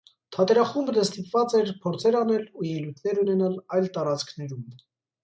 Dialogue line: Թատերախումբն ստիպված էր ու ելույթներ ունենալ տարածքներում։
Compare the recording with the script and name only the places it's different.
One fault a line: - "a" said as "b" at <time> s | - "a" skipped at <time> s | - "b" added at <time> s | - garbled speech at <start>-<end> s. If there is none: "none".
- "փորձեր անել" added at 1.8 s
- "այլ" added at 3.8 s